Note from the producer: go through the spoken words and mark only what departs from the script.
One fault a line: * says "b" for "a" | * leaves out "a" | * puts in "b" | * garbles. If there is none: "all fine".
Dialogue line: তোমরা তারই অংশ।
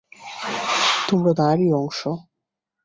all fine